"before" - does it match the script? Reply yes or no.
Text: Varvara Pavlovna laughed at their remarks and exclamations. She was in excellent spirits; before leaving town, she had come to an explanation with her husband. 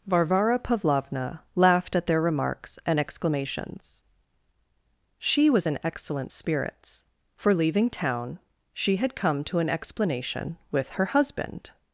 no